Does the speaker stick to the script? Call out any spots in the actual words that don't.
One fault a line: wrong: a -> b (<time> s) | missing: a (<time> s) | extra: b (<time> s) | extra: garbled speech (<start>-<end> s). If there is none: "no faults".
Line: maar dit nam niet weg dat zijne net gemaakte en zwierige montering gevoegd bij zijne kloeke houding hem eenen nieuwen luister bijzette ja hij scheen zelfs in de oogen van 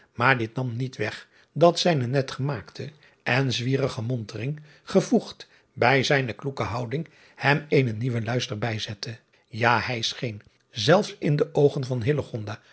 no faults